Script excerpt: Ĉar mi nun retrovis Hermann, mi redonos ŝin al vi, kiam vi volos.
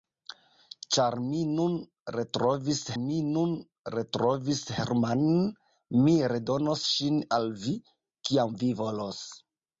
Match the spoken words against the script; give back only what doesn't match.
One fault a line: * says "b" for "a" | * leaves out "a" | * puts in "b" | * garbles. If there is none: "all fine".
* puts in "mi nun retrovis"